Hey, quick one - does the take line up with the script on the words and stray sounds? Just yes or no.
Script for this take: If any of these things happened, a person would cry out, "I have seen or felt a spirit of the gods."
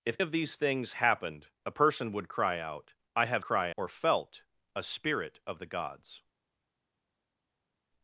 no